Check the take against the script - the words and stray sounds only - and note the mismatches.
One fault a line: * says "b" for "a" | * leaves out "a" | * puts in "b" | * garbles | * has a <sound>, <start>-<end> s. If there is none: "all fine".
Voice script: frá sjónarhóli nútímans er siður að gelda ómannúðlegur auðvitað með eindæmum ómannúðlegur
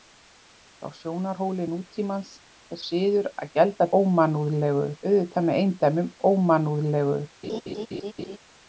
* has a laugh, 7.4-8.4 s